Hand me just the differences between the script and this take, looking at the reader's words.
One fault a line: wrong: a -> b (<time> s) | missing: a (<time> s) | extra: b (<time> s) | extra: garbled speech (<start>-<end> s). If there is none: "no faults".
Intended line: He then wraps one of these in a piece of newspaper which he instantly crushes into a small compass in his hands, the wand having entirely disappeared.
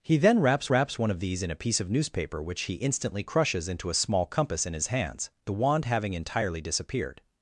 extra: wraps (0.7 s)